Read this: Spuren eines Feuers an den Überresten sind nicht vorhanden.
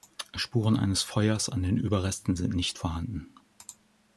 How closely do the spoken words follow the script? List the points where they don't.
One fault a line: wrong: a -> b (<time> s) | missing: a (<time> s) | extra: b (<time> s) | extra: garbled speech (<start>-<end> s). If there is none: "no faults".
no faults